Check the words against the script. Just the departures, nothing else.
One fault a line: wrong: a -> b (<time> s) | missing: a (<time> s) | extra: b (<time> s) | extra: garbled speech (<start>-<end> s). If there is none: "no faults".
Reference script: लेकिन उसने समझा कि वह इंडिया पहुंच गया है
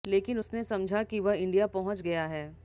no faults